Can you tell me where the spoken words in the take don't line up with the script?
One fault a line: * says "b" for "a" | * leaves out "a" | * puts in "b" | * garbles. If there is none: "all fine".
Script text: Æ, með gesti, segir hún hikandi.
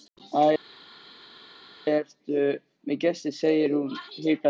* puts in "ertu"